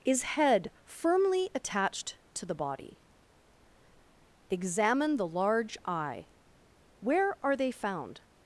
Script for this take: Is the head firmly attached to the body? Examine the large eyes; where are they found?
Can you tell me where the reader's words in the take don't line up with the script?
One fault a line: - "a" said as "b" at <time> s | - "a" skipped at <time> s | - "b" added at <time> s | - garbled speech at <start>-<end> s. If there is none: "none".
- "the" skipped at 0.2 s
- "eyes" said as "eye" at 5.8 s